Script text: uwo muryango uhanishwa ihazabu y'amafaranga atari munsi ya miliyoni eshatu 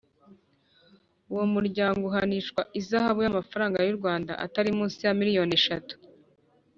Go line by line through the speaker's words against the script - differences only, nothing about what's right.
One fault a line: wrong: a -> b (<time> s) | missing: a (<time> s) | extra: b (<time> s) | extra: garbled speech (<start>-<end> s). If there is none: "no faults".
extra: y'u rwanda (3.9 s)